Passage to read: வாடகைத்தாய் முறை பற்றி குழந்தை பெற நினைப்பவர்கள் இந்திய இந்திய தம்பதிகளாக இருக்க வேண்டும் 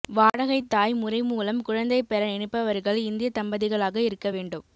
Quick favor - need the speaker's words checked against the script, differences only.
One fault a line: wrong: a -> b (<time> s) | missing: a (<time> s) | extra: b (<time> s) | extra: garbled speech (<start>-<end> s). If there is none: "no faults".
wrong: பற்றி -> மூலம் (1.2 s)
missing: இந்திய (3.3 s)